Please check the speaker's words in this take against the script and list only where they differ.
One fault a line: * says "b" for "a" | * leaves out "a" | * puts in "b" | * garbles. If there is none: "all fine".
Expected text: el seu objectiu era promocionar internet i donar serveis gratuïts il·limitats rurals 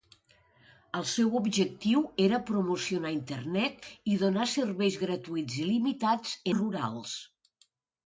all fine